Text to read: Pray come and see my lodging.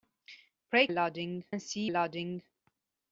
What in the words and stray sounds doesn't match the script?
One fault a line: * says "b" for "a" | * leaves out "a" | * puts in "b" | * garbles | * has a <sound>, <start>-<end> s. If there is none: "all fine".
* says "lodging" for "come"
* leaves out "my"